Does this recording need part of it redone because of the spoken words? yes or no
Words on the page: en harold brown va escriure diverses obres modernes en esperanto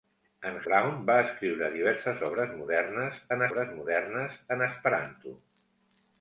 yes